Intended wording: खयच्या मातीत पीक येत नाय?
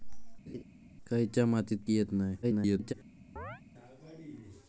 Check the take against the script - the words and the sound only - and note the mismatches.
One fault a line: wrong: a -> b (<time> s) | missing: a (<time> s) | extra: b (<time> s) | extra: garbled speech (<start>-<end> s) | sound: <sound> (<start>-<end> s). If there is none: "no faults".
sound: laugh (0.5-0.6 s)
missing: पीक (1.8 s)
extra: garbled speech (2.4-2.9 s)
sound: chirp (3.4-3.6 s)